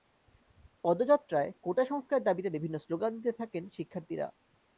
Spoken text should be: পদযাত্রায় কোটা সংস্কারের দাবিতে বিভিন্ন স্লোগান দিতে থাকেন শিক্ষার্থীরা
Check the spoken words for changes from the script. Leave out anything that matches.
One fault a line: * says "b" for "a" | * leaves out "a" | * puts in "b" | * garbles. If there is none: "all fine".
all fine